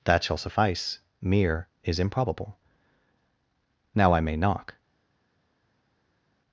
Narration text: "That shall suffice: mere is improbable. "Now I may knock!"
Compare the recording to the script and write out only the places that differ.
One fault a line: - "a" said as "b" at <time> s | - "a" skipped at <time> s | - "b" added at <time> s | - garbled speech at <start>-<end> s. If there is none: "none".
none